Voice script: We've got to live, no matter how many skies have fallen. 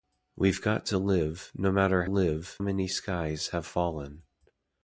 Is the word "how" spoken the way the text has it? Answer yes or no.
no